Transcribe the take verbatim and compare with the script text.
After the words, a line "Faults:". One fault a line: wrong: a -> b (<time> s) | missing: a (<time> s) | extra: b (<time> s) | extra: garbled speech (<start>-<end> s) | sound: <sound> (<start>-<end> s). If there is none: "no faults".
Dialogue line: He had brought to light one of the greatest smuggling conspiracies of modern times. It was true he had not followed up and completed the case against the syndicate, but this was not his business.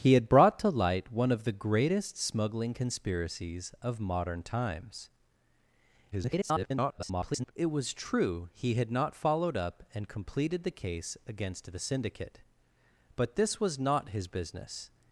He had brought to light one of the greatest smuggling conspiracies of modern times. [garbled] It was true he had not followed up and completed the case against the syndicate, but this was not his business.
Faults:
extra: garbled speech (6.1-7.5 s)